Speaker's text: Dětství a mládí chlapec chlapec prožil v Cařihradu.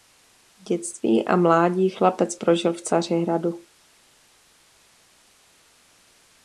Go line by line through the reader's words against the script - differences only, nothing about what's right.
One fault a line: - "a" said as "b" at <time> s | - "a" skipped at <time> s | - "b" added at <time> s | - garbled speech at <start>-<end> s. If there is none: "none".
- "chlapec" skipped at 2.4 s